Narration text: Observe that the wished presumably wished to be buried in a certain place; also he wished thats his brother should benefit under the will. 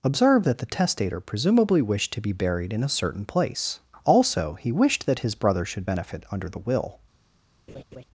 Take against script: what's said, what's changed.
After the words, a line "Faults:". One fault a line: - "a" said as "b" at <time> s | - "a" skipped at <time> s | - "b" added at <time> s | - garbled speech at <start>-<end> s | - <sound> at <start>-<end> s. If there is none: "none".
Observe that the testator presumably wished to be buried in a certain place; also he wished that his brother should benefit under the will.
Faults:
- "wished" said as "testator" at 0.7 s
- "thats" said as "that" at 5.0 s
- laugh at 7.7-8.0 s